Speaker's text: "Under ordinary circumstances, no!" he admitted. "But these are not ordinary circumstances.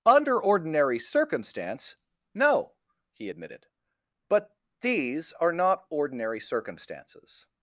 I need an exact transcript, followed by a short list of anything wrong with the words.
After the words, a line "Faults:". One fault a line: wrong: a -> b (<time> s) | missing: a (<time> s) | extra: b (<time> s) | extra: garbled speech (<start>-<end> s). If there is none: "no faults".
"Under ordinary circumstance, no!" he admitted. "But these are not ordinary circumstances.
Faults:
wrong: circumstances -> circumstance (1.0 s)